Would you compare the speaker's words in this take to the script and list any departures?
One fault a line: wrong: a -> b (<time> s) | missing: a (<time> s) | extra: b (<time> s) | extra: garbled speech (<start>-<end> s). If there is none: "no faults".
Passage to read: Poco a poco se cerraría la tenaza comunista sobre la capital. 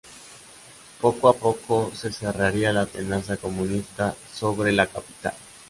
no faults